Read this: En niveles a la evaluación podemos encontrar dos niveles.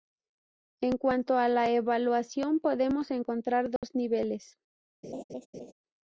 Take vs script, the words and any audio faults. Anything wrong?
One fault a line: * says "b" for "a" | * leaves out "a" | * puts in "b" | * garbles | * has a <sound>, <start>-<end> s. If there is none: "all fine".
* says "cuanto" for "niveles"
* has a dropout, 3.8-3.8 s
* has a laugh, 5.0-5.7 s